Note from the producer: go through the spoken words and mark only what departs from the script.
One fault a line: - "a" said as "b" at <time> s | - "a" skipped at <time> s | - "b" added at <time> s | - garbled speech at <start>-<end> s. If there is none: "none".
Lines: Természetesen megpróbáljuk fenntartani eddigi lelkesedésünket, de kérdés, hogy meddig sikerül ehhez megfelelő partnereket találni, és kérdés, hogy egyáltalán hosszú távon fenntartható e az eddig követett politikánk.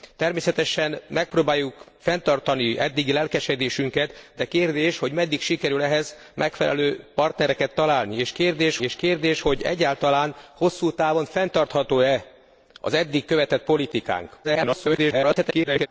- "és kérdés" added at 8.8 s
- garbled speech at 14.4-15.9 s